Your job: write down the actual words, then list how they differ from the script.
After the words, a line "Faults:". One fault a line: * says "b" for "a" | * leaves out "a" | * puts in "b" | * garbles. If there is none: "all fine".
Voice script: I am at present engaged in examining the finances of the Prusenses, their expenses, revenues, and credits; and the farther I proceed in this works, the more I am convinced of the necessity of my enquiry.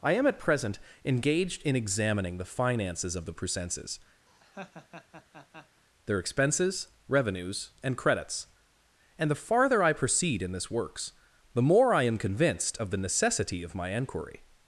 I am at present engaged in examining the finances of the Prusenses, their expenses, revenues, and credits; and the farther I proceed in this works, the more I am convinced of the necessity of my enquiry.
Faults:
all fine